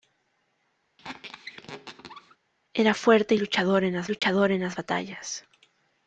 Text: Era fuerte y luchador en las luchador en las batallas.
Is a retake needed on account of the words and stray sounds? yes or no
yes